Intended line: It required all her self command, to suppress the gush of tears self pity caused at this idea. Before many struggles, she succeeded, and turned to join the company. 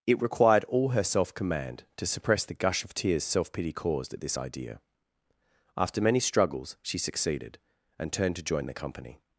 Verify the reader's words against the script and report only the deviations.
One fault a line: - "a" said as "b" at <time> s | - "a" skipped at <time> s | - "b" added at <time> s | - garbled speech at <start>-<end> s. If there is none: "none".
- "Before" said as "After" at 5.8 s